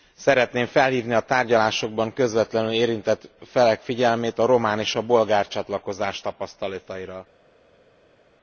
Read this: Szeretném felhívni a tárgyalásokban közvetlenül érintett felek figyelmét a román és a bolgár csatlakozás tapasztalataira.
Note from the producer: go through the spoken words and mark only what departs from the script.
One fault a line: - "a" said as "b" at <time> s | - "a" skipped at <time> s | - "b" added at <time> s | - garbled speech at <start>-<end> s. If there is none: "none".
none